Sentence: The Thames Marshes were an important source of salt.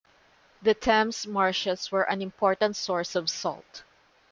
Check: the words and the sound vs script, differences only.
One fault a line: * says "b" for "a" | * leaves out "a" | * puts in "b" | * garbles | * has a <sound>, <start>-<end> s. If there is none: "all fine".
all fine